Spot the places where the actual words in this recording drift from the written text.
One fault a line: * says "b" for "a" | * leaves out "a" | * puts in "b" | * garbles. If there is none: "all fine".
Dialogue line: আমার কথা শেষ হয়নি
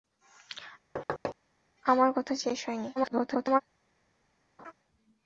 * garbles